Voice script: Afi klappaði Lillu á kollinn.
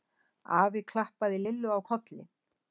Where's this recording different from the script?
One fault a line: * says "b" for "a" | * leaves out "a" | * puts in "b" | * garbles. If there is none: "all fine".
all fine